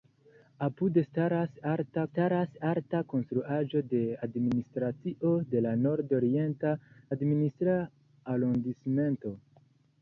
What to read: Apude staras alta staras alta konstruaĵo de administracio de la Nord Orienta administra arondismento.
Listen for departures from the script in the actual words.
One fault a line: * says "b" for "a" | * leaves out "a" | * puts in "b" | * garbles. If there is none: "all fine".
all fine